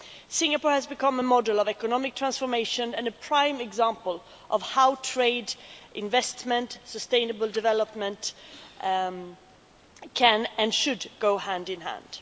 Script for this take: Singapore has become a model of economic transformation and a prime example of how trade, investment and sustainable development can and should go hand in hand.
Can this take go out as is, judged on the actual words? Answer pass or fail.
pass